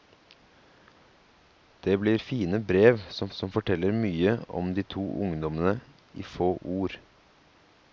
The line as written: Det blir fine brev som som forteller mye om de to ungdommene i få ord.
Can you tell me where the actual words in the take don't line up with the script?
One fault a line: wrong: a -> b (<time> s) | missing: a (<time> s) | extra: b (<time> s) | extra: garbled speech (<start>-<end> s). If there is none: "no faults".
no faults